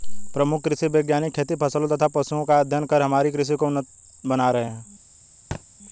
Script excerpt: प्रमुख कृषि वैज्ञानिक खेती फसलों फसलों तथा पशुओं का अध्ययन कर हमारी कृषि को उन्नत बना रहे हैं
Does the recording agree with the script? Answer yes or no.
no